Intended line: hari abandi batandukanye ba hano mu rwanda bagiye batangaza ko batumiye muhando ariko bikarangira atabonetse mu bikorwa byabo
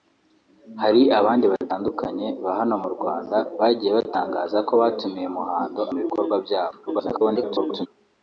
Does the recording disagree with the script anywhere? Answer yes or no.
yes